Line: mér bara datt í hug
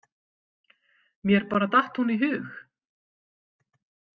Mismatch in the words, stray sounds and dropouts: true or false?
true